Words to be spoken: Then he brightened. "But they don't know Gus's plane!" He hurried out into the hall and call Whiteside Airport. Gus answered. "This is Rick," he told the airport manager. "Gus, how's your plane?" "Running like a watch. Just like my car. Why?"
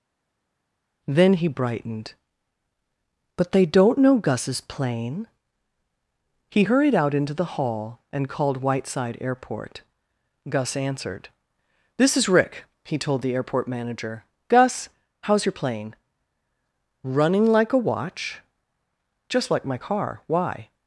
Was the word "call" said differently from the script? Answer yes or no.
yes